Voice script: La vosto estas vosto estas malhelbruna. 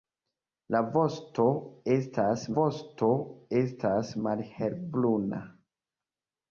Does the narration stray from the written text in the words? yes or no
no